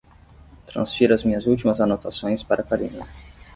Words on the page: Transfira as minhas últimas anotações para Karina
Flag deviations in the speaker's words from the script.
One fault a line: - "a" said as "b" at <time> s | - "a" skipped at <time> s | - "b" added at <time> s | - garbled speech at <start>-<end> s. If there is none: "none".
none